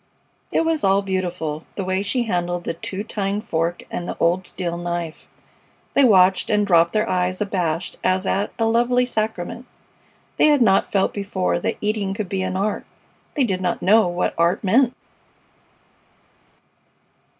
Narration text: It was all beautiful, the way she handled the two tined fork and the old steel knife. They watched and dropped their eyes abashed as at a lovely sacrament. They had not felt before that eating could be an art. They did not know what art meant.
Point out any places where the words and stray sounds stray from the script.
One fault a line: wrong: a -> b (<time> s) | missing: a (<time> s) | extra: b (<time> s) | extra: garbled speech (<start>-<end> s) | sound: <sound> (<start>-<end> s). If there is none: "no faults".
no faults